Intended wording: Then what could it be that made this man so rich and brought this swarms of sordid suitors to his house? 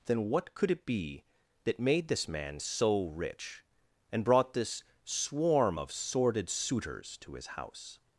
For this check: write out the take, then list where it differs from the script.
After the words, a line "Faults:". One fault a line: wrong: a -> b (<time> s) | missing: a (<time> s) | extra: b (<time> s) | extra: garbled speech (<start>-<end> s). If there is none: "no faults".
Then what could it be that made this man so rich and brought this swarm of sordid suitors to his house?
Faults:
wrong: swarms -> swarm (5.0 s)